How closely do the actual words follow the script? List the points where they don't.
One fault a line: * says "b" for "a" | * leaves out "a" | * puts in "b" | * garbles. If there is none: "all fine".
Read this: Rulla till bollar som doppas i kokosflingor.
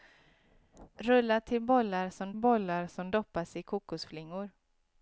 * puts in "bollar som"